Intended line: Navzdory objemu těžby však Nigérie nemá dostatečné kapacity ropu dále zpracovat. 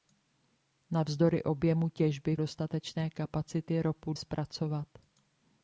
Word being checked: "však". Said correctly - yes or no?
no